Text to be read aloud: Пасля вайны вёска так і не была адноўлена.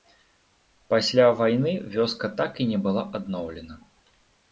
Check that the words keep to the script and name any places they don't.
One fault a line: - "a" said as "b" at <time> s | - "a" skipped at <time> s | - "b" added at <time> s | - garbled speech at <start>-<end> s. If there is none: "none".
none